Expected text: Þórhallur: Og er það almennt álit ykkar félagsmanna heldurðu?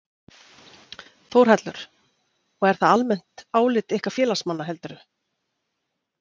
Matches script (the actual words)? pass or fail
pass